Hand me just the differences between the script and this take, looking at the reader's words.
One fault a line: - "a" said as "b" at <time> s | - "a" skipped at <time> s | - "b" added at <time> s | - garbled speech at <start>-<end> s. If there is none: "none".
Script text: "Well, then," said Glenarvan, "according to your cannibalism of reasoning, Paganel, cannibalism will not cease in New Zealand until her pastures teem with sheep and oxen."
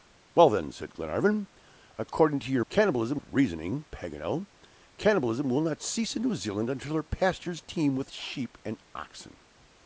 none